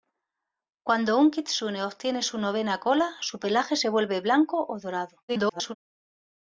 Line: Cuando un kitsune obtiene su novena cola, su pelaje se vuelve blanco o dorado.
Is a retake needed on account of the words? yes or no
yes